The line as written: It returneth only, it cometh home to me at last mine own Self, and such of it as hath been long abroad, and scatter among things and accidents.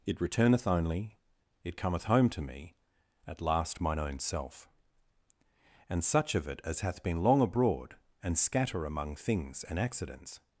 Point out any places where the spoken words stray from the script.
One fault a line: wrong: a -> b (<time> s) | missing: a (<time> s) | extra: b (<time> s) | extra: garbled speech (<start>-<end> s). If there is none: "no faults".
no faults